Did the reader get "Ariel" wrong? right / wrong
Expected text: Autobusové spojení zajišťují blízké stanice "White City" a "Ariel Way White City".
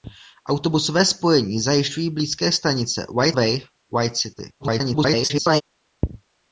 wrong